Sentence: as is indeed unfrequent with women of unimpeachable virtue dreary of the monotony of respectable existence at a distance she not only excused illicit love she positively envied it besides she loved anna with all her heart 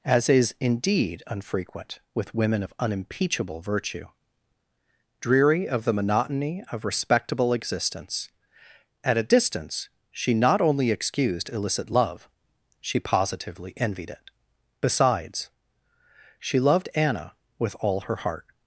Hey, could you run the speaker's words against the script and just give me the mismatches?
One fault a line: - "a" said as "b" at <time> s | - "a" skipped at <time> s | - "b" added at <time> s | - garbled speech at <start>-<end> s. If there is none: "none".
none